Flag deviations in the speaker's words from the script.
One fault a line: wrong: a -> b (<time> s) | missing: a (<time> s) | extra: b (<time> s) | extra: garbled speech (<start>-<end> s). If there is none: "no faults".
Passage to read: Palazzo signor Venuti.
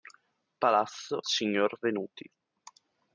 no faults